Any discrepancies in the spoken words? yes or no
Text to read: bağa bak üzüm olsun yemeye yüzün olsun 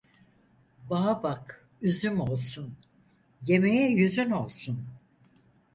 no